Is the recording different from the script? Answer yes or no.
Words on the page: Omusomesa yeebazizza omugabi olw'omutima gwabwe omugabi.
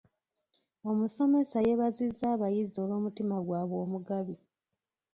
yes